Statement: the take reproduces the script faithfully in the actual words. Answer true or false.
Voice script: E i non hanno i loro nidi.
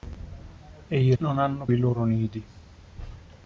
true